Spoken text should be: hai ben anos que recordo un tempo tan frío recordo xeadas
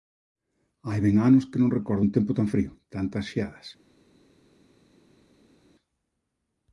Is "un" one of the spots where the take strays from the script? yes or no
no